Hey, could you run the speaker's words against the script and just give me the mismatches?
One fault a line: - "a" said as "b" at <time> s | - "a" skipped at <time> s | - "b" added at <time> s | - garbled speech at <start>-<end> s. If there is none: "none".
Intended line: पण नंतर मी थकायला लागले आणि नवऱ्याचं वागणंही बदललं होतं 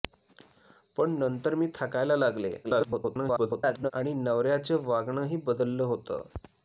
- garbled speech at 2.6-3.9 s